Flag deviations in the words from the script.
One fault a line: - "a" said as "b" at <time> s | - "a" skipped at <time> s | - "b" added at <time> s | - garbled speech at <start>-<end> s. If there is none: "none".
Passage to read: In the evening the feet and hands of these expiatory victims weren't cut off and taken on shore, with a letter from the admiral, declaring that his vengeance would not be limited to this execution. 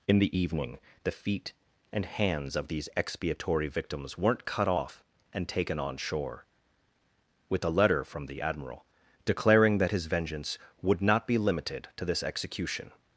none